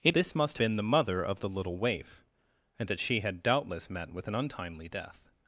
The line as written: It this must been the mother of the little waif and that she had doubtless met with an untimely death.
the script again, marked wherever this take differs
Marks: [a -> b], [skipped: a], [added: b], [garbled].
It this must been the mother of the little waif and that she had doubtless met with an untimely death.